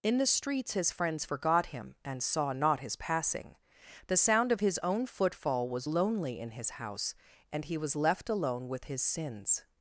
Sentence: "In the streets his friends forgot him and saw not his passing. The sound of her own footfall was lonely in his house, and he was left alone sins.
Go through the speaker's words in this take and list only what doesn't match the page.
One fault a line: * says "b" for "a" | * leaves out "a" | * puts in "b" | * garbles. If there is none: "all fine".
* says "his" for "her"
* puts in "with his"